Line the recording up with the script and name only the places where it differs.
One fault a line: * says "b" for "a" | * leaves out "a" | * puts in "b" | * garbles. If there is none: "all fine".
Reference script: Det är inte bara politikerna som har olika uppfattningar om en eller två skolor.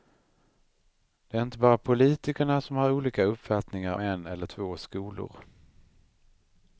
* leaves out "om"